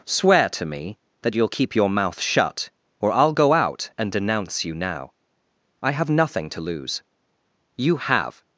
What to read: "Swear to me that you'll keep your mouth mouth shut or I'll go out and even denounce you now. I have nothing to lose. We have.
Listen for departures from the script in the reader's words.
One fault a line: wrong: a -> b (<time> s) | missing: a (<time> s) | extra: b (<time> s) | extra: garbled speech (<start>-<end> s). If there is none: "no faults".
missing: mouth (2.2 s)
missing: even (4.1 s)
wrong: We -> You (7.8 s)